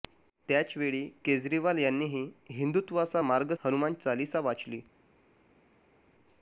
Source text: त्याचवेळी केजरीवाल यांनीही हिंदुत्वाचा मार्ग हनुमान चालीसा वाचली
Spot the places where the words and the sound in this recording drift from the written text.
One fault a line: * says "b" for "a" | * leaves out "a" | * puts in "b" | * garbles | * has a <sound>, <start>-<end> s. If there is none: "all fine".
all fine